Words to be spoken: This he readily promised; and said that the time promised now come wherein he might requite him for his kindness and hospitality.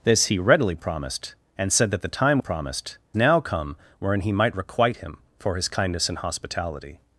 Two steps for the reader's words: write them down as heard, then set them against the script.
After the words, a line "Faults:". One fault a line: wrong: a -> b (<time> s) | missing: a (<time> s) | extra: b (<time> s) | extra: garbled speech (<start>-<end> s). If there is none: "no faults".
This he readily promised; and said that the time promised now come wherein he might requite him for his kindness and hospitality.
Faults:
no faults